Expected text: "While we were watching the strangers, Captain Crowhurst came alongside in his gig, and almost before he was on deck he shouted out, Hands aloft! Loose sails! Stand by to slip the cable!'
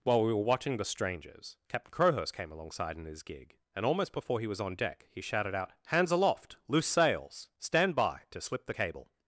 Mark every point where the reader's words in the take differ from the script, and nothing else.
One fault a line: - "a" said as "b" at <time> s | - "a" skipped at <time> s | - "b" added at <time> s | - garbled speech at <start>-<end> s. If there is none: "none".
none